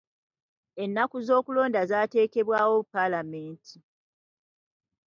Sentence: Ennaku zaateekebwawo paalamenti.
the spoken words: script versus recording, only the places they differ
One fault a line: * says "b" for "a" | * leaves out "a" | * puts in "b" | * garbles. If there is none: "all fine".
* puts in "z'okulonda"